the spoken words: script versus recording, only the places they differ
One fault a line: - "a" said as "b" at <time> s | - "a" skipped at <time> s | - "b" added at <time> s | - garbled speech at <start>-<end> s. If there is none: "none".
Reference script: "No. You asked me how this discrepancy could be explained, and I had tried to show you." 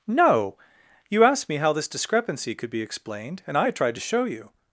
none